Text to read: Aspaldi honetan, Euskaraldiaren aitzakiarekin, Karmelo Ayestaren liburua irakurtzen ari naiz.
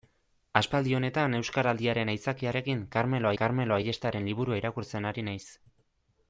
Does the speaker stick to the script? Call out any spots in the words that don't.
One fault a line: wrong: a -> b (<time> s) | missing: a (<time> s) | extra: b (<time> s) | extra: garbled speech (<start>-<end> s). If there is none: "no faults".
extra: Karmelo (3.4 s)